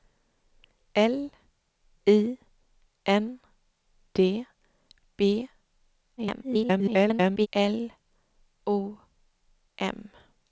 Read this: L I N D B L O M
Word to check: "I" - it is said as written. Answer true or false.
true